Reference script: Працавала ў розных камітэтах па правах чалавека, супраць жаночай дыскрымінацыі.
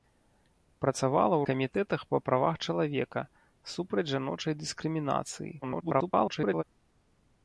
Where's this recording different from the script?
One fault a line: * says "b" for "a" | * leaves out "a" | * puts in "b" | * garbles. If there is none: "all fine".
* leaves out "розных"
* garbles